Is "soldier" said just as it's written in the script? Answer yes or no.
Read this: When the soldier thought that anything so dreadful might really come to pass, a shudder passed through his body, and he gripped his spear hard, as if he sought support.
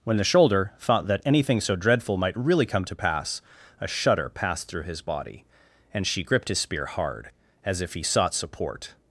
no